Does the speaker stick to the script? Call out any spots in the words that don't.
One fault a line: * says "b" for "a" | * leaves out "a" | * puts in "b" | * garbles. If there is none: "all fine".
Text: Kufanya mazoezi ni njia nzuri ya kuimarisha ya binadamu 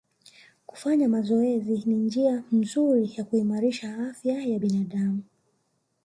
* puts in "afya"